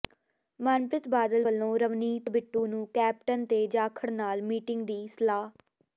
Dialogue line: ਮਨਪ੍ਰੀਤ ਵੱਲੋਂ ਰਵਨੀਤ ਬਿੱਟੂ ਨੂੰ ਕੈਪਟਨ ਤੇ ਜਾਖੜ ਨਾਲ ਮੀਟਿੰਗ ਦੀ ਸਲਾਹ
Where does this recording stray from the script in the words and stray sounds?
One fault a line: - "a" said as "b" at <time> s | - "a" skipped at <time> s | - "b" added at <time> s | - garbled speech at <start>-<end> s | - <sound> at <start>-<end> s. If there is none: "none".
- "ਬਾਦਲ" added at 1.1 s